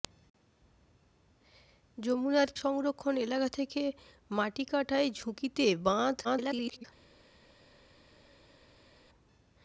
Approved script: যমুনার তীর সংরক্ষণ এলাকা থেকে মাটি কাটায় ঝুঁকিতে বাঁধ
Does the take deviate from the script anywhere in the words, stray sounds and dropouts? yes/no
yes